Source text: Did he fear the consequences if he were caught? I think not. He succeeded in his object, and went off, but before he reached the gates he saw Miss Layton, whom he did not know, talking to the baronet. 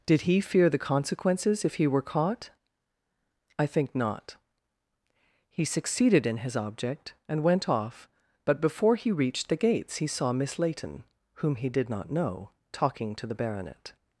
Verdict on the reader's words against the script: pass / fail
pass